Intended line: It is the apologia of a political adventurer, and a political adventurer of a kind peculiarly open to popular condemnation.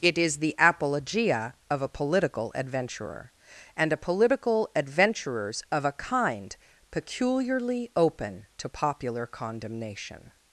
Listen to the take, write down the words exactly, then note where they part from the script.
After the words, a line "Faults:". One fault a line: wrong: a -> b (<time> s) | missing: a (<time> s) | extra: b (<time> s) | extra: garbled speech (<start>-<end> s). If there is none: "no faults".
It is the apologia of a political adventurer, and a political adventurers of a kind peculiarly open to popular condemnation.
Faults:
wrong: adventurer -> adventurers (4.8 s)